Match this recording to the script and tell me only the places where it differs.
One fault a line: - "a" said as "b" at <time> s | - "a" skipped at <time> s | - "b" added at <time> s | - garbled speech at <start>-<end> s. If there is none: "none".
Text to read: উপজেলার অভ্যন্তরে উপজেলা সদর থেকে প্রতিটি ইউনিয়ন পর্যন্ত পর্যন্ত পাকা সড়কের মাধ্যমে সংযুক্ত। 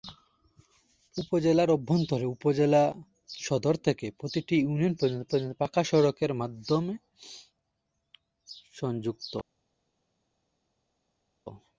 none